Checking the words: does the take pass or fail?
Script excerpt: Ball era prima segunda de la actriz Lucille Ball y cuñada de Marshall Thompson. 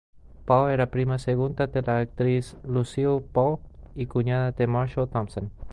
pass